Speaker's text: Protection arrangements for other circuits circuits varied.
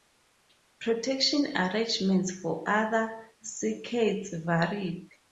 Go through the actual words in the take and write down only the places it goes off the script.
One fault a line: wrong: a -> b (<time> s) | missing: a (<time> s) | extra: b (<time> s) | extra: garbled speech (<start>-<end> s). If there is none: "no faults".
missing: circuits (4.3 s)